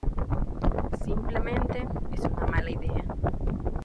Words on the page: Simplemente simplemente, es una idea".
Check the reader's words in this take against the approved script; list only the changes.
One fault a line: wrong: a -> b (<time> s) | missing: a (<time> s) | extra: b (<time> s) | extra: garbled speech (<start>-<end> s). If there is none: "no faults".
missing: simplemente (1.9 s)
extra: mala (2.5 s)